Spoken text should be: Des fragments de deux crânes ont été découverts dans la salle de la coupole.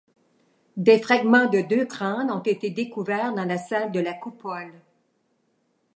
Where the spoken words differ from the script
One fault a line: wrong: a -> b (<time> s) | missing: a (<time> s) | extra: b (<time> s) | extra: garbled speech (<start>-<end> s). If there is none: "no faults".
no faults